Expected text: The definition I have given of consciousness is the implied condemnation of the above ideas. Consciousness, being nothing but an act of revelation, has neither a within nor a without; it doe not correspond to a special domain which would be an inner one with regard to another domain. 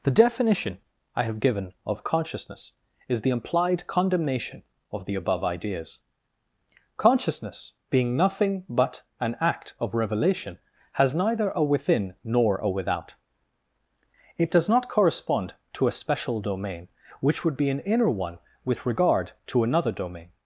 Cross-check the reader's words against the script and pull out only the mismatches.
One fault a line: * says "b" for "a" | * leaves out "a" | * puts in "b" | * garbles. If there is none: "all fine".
* says "does" for "doe"